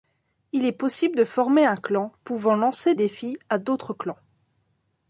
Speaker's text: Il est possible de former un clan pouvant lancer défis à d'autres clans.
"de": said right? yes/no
yes